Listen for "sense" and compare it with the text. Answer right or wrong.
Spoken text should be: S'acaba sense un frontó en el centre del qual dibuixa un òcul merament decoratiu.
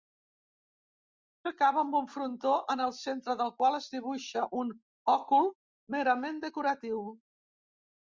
wrong